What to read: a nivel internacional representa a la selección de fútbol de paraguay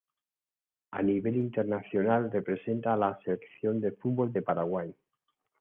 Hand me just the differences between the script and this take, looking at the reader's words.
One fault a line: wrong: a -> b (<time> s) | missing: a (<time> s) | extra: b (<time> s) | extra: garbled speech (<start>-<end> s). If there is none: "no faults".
no faults